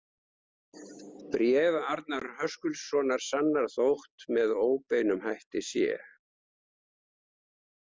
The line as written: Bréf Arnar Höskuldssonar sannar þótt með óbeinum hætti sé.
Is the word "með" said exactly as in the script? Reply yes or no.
yes